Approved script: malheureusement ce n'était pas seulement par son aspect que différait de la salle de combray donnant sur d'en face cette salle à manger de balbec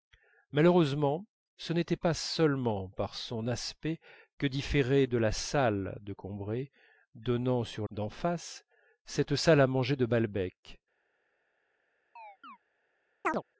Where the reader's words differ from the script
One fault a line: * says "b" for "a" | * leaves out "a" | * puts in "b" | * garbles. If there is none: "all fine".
all fine